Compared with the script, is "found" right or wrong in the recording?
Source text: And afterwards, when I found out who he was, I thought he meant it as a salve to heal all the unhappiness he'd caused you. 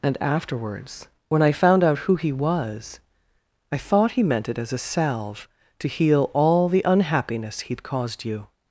right